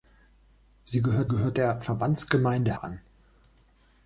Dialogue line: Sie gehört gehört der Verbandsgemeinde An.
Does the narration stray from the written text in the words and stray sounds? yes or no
no